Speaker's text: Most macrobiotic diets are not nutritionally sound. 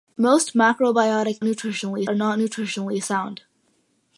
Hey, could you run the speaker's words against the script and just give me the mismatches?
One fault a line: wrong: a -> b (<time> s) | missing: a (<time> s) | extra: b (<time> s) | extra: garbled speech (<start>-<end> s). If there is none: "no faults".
wrong: diets -> nutritionally (1.4 s)